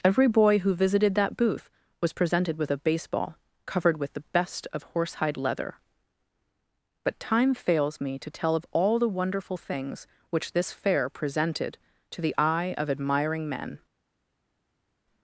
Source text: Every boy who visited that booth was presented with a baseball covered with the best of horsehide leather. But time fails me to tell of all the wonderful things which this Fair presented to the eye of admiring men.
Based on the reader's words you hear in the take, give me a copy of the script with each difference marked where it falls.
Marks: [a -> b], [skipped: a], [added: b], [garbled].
Every boy who visited that booth was presented with a baseball covered with the best of horsehide leather. But time fails me to tell of all the wonderful things which this Fair presented to the eye of admiring men.